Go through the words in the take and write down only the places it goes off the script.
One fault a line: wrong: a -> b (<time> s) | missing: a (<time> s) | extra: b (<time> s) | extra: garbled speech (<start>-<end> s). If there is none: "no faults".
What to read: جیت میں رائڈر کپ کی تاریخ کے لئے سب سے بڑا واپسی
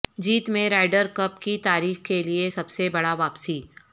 no faults